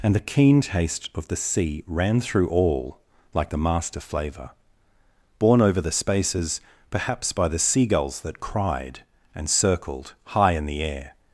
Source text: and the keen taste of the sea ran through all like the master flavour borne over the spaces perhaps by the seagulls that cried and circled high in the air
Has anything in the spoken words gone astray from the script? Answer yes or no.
no